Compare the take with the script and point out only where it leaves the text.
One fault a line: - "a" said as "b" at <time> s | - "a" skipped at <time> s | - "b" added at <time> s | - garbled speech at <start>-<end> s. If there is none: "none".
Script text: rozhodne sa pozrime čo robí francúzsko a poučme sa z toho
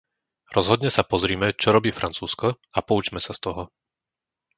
none